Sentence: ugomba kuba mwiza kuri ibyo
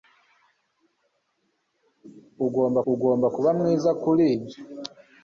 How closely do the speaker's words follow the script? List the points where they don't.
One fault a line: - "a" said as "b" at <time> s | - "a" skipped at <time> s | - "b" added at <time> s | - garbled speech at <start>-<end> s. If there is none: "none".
- "ugomba" added at 2.9 s